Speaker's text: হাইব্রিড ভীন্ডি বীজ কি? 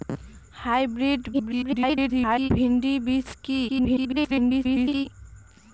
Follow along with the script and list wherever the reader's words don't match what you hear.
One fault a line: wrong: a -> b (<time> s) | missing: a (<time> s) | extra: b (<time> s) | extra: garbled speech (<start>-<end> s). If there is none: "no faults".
extra: garbled speech (1.3-2.5 s)
extra: garbled speech (3.7-5.1 s)